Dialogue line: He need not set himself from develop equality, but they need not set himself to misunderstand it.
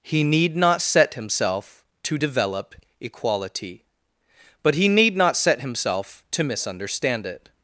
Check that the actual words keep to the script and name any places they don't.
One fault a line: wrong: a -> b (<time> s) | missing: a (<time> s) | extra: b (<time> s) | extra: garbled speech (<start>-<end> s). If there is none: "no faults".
wrong: from -> to (2.0 s)
wrong: they -> he (4.7 s)